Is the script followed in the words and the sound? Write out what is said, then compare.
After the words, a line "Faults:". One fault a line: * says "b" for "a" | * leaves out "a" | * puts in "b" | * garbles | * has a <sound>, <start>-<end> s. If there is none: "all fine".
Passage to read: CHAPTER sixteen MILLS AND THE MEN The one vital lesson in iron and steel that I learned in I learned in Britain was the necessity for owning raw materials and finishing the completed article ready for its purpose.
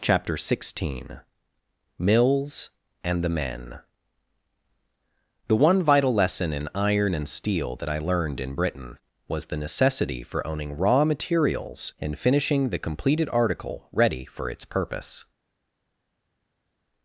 CHAPTER sixteen MILLS AND THE MEN The one vital lesson in iron and steel that I learned in Britain was the necessity for owning raw materials and finishing the completed article ready for its purpose.
Faults:
* leaves out "I learned in"